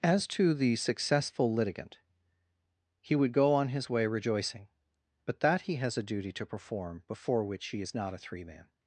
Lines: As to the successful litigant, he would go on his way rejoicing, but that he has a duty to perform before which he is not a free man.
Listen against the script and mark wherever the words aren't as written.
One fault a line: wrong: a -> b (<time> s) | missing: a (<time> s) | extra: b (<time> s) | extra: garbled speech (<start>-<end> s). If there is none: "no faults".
wrong: free -> three (8.2 s)